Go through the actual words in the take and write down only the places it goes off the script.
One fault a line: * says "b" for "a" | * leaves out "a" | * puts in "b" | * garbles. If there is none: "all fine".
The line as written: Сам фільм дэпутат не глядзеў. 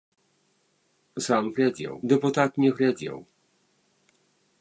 * says "глядзеў" for "фільм"